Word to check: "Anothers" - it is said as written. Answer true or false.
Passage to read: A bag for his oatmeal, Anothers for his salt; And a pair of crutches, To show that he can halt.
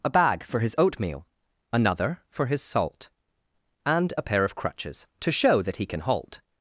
false